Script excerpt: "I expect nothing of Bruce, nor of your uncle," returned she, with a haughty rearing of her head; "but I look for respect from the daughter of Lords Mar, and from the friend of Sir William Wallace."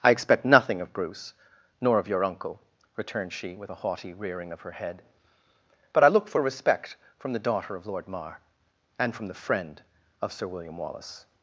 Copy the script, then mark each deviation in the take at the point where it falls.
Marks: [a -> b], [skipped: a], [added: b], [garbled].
"I expect nothing of Bruce, nor of your uncle," returned she, with a haughty rearing of her head; "but I look for respect from the daughter of [Lords -> Lord] Mar, and from the friend of Sir William Wallace."